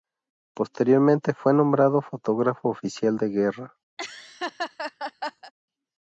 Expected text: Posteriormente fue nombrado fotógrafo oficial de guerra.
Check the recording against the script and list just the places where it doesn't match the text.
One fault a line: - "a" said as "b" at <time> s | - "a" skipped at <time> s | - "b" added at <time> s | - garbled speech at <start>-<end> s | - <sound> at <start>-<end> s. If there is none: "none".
- laugh at 4.0-5.5 s